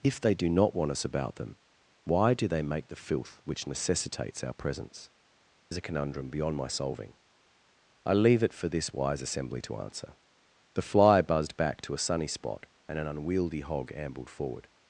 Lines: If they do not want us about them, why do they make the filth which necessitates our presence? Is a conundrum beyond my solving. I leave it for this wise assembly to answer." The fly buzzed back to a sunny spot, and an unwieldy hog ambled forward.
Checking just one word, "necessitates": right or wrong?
right